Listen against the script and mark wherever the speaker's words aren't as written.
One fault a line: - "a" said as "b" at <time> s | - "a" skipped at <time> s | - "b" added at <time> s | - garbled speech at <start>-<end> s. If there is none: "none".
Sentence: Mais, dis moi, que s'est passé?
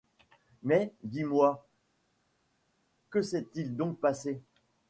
- "il donc" added at 3.6 s